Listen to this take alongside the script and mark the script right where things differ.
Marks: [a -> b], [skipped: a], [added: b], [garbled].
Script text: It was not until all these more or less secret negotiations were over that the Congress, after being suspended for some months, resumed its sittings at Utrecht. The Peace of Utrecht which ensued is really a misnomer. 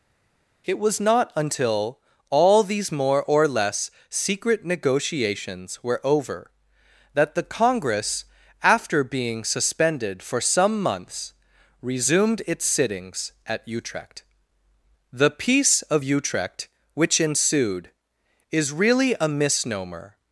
It was not until all these more or less secret negotiations were over that the Congress, after being suspended for some months, resumed its sittings at Utrecht. The Peace of Utrecht which ensued is really a misnomer.